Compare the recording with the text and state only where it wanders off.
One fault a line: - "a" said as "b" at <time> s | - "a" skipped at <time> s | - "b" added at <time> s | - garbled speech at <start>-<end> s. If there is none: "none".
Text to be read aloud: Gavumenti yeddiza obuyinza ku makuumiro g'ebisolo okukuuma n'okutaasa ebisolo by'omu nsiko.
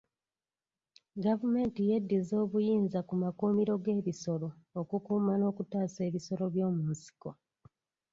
none